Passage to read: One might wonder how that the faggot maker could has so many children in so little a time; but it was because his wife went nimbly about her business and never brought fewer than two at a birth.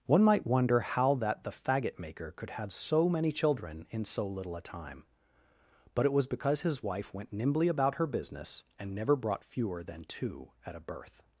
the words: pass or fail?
fail